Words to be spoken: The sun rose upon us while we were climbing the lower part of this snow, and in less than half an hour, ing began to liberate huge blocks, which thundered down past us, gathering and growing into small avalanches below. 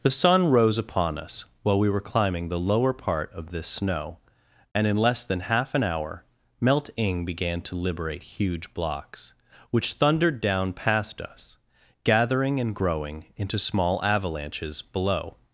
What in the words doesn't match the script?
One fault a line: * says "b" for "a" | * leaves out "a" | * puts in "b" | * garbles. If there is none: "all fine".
* puts in "melt"